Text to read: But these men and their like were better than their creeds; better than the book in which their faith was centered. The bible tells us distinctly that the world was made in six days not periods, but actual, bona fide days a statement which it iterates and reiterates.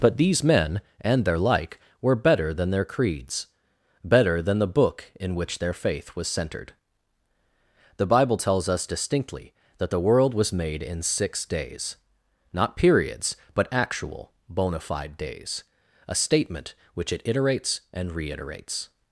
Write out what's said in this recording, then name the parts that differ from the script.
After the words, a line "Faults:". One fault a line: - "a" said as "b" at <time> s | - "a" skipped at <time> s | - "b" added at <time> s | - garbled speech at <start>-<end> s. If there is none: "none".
But these men and their like were better than their creeds; better than the book in which their faith was centered. The bible tells us distinctly that the world was made in six days not periods, but actual, bona fide days a statement which it iterates and reiterates.
Faults:
none